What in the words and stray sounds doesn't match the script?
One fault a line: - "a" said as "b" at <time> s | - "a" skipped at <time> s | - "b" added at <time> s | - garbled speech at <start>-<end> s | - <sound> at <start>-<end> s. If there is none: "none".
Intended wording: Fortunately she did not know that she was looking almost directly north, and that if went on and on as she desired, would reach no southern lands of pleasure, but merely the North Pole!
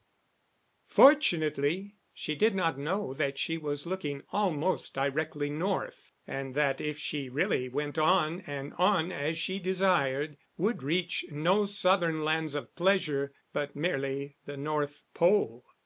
- "she really" added at 7.0 s